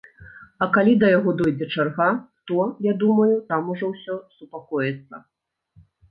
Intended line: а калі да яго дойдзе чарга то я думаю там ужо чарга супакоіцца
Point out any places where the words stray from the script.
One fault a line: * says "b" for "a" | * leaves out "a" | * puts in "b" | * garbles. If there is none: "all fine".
* says "ўсё" for "чарга"